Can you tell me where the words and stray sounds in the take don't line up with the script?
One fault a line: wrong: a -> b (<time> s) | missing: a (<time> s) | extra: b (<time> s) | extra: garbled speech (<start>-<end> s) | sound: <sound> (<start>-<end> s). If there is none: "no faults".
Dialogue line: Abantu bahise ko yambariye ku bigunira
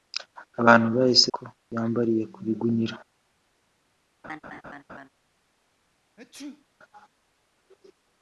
sound: laugh (4.2-5.1 s)
sound: sneeze (6.2-6.7 s)